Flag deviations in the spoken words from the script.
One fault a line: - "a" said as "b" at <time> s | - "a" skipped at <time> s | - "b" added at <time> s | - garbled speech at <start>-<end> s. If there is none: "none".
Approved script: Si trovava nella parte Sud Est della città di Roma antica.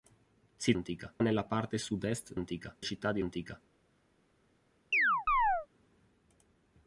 - "trovava" said as "antica" at 0.7 s
- "della" said as "antica" at 2.4 s
- "Roma" skipped at 3.2 s